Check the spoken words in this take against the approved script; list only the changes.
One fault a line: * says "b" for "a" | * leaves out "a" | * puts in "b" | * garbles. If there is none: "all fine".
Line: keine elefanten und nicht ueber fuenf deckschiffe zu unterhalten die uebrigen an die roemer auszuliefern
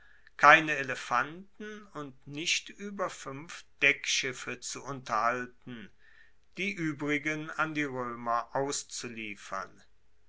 all fine